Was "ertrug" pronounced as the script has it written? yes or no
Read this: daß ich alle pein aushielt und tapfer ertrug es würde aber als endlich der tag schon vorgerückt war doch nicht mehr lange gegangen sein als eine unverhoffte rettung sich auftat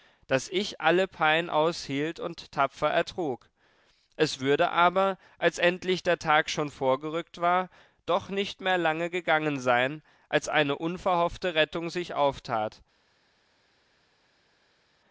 yes